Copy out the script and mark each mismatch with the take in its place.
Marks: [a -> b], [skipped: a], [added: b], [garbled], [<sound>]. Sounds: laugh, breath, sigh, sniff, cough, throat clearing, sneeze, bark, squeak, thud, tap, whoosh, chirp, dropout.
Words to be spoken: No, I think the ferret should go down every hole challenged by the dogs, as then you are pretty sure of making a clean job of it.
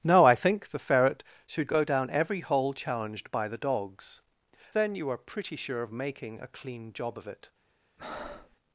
No, I think the ferret should go down every hole challenged by the dogs, [skipped: as] then you are pretty sure of making a clean job of it. [breath]